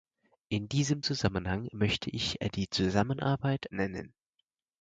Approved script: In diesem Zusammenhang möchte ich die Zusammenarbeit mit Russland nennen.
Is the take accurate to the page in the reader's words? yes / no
no